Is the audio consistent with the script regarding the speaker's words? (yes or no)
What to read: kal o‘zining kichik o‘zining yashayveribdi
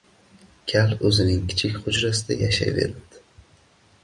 no